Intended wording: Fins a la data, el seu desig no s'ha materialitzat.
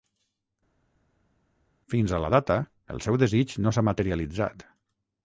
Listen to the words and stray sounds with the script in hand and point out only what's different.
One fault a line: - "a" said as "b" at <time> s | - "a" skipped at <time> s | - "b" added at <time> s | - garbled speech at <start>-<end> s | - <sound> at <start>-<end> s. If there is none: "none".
none